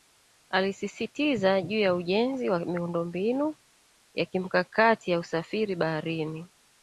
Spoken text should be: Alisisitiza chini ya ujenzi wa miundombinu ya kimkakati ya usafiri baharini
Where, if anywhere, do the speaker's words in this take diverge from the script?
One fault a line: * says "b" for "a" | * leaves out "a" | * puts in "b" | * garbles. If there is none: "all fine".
* says "juu" for "chini"